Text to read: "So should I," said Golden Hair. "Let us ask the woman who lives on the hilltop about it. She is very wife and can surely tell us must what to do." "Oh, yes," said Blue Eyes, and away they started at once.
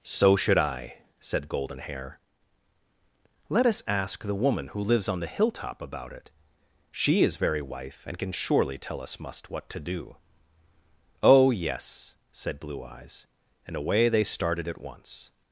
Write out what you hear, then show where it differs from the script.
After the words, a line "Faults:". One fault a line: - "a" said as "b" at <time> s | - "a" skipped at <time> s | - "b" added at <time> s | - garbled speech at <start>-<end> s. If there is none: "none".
"So should I," said Golden Hair. "Let us ask the woman who lives on the hilltop about it. She is very wife and can surely tell us must what to do." "Oh, yes," said Blue Eyes, and away they started at once.
Faults:
none